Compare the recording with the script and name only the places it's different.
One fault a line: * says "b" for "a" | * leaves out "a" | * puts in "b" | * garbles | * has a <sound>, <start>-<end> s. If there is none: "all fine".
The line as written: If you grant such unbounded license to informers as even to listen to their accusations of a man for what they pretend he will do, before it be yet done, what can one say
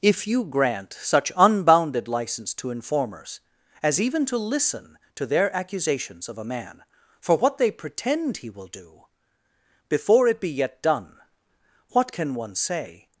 all fine